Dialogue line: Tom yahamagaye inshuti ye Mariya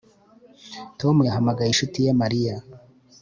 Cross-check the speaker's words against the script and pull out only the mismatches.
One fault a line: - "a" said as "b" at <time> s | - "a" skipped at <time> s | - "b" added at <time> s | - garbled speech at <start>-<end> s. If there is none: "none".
none